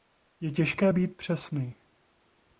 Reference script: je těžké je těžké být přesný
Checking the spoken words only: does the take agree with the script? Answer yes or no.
no